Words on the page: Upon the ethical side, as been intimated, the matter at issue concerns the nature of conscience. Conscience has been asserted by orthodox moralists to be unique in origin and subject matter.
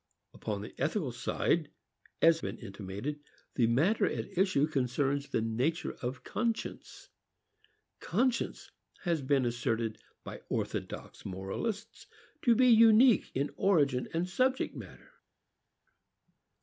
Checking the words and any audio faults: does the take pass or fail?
pass